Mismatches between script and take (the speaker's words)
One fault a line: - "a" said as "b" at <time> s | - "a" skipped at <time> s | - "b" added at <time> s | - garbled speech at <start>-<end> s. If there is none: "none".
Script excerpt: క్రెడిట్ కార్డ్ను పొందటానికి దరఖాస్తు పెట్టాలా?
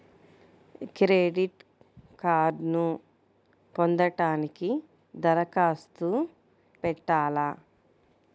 none